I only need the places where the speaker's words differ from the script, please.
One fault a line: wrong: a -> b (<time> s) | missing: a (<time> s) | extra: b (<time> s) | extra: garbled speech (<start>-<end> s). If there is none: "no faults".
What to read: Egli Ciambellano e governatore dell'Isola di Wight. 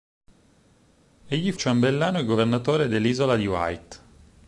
no faults